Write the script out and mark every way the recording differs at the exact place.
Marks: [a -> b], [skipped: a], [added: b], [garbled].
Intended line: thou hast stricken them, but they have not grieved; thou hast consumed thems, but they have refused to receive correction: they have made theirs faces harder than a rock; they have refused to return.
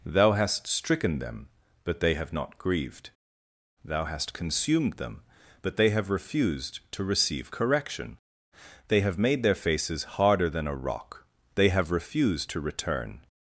thou hast stricken them, but they have not grieved; thou hast consumed [thems, -> them] but they have refused to receive correction: they have made [theirs -> their] faces harder than a rock; they have refused to return.